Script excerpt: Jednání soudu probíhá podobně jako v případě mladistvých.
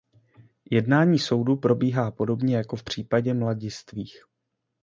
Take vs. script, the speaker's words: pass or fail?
pass